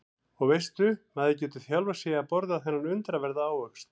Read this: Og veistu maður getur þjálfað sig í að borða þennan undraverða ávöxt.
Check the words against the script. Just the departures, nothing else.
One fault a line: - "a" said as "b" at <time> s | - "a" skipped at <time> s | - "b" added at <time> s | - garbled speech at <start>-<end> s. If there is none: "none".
none